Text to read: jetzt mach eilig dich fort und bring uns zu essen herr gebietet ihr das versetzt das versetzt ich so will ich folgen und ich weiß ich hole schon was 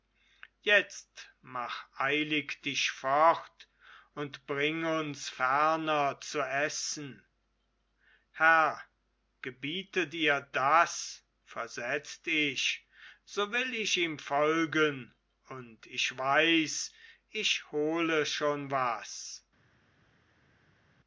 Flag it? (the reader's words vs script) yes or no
yes